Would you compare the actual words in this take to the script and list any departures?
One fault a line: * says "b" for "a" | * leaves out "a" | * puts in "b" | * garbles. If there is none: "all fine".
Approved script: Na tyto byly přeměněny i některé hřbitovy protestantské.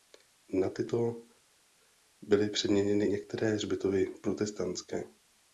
* leaves out "i"